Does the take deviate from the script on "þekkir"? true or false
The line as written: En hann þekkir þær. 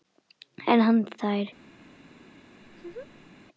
true